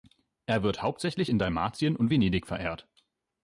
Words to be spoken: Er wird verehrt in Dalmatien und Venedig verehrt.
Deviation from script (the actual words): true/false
true